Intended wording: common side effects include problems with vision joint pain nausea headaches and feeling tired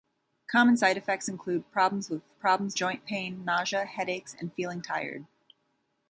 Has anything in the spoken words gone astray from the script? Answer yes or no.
yes